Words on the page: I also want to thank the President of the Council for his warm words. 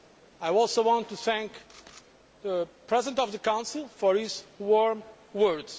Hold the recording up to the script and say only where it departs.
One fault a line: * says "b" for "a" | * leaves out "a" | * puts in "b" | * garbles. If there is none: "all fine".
all fine